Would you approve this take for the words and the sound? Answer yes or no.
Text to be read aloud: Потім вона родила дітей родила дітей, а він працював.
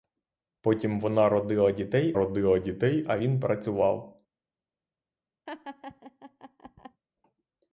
no